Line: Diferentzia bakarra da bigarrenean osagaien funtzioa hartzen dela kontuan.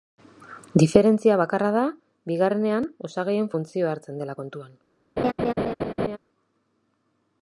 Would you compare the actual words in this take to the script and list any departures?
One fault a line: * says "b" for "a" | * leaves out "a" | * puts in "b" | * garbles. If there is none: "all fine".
all fine